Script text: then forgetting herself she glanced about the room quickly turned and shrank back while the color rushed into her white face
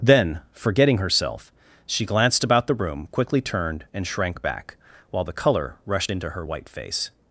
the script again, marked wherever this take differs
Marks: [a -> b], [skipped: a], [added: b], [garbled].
then forgetting herself she glanced about the room quickly turned and shrank back while the color rushed into her white face